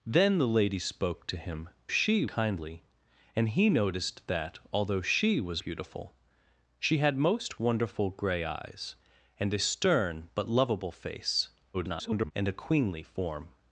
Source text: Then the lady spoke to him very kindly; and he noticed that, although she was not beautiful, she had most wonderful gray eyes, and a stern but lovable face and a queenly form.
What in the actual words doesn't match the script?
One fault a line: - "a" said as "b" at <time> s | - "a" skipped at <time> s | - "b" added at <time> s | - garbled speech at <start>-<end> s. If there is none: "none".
- "very" said as "she" at 1.9 s
- "not" skipped at 5.6 s
- garbled speech at 11.7-12.3 s